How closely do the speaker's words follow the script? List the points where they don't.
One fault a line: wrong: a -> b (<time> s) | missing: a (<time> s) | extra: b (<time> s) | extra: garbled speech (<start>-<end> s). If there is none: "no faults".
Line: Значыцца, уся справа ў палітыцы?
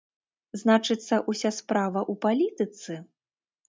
no faults